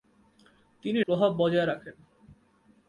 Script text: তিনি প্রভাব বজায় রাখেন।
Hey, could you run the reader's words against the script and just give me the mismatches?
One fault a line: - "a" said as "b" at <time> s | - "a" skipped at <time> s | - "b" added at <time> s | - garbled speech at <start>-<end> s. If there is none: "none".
none